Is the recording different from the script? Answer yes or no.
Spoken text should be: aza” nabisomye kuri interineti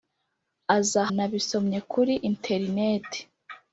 no